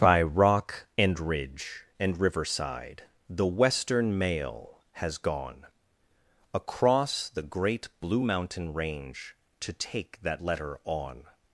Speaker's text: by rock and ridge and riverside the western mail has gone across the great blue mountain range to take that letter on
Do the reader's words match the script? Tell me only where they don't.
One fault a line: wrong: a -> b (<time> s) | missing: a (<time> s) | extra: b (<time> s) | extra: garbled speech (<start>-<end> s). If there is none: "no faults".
no faults